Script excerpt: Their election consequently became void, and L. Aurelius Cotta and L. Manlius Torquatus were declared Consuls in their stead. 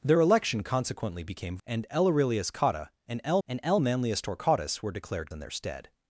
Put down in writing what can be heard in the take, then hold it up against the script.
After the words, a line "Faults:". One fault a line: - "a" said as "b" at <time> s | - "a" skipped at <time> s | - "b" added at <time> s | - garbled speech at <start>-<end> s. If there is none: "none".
Their election consequently became and L. Aurelius Cotta and L and L. Manlius Torquatus were declared In their stead.
Faults:
- "void" skipped at 1.6 s
- "and L" added at 3.5 s
- "Consuls" skipped at 5.3 s